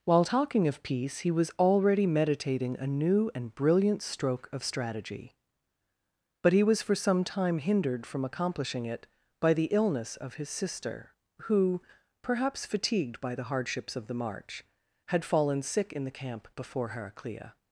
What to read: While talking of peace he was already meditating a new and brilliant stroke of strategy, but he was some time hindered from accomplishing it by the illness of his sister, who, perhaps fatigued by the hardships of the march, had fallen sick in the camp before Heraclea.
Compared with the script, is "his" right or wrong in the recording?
right